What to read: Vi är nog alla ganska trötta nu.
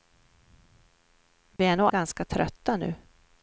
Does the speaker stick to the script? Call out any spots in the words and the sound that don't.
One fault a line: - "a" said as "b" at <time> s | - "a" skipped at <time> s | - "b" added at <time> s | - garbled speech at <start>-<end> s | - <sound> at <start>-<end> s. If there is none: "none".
- dropout at 1.6-1.6 s
- "alla" skipped at 1.9 s